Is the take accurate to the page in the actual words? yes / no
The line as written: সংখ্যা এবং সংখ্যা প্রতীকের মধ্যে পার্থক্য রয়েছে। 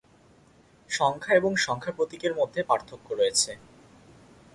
yes